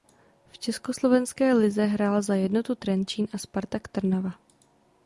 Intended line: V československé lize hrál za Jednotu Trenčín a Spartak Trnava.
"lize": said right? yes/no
yes